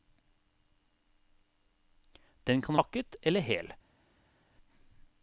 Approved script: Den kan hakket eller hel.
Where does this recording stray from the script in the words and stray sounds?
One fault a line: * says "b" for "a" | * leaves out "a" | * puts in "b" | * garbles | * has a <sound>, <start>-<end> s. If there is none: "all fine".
all fine